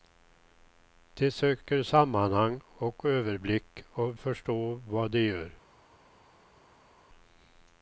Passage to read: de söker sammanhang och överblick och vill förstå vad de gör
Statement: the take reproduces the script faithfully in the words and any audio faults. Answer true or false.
false